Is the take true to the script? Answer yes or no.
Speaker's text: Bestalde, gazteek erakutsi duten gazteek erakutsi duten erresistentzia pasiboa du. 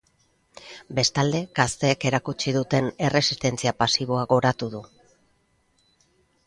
no